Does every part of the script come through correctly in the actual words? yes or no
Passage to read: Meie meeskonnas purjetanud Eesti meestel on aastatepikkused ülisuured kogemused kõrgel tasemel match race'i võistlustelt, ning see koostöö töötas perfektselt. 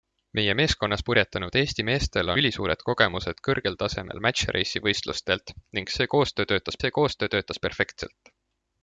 no